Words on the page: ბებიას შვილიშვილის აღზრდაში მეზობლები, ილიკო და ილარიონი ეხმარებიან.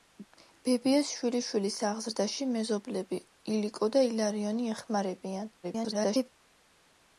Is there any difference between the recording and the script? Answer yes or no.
yes